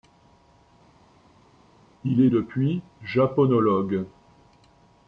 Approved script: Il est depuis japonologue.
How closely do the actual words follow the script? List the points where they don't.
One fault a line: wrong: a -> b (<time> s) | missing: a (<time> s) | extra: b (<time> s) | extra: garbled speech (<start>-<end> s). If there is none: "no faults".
no faults